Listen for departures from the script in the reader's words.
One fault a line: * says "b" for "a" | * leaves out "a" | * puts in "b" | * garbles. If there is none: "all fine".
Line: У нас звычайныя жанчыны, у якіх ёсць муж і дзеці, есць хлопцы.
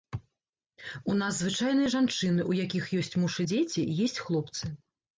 all fine